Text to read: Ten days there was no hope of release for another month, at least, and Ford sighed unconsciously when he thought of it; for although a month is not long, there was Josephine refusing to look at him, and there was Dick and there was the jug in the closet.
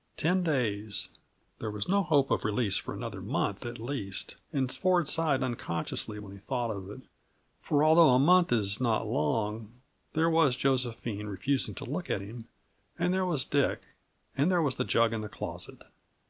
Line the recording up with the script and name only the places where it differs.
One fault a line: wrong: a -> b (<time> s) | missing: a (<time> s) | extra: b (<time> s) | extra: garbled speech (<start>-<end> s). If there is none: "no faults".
no faults